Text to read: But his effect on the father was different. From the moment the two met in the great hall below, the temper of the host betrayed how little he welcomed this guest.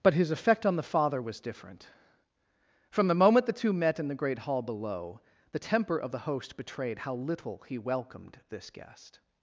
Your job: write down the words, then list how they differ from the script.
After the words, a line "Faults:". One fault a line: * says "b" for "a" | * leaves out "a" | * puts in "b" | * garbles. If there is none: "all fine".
But his effect on the father was different. From the moment the two met in the great hall below, the temper of the host betrayed how little he welcomed this guest.
Faults:
all fine